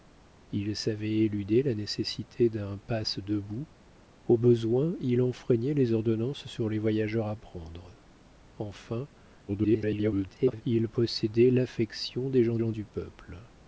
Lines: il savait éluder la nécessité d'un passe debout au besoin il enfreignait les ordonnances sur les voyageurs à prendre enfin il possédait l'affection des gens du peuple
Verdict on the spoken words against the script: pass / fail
fail